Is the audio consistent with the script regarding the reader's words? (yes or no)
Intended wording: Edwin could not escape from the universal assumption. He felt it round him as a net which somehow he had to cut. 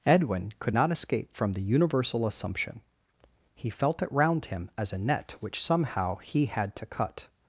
yes